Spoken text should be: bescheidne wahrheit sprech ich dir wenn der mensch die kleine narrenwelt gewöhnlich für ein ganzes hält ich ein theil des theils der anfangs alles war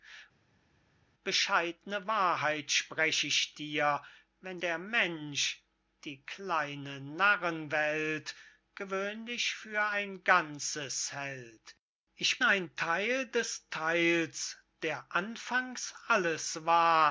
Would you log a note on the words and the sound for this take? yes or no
no